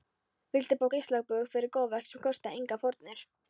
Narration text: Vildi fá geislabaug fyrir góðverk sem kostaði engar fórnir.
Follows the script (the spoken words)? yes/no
yes